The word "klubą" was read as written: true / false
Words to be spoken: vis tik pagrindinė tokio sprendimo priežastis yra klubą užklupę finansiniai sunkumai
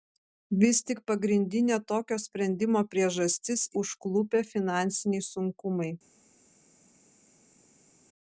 false